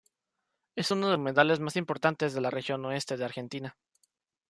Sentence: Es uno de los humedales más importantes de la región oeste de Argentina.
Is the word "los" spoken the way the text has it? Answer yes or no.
no